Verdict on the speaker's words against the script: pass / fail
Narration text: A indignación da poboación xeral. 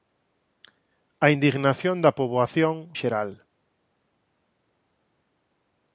pass